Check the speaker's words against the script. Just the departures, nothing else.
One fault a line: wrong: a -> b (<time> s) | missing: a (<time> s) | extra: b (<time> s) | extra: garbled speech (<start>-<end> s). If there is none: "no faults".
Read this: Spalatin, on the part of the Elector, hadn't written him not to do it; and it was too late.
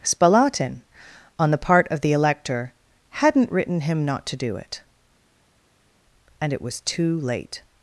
no faults